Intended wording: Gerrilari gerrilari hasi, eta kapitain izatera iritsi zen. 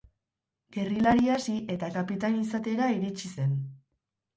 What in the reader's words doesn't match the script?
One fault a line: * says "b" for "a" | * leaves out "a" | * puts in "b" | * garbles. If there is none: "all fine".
* leaves out "gerrilari"